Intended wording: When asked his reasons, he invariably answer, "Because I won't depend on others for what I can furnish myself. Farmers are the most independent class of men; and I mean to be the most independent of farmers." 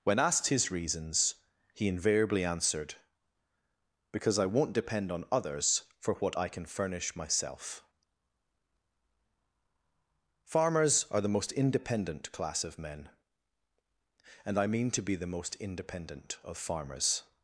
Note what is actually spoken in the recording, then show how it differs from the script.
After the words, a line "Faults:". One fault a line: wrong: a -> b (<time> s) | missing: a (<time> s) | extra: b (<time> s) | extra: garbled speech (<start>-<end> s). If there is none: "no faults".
When asked his reasons, he invariably answered, "Because I won't depend on others for what I can furnish myself. Farmers are the most independent class of men; and I mean to be the most independent of farmers."
Faults:
wrong: answer -> answered (2.4 s)